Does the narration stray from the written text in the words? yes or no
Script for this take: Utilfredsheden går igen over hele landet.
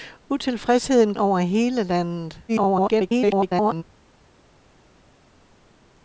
yes